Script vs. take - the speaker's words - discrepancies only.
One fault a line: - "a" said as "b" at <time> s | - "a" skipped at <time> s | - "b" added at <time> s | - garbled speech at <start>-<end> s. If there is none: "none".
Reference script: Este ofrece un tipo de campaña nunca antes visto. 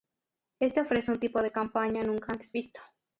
none